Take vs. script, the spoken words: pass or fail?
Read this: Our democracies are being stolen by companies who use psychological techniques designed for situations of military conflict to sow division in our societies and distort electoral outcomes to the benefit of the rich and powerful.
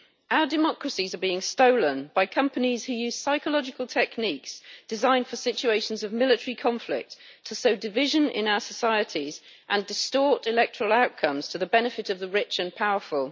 pass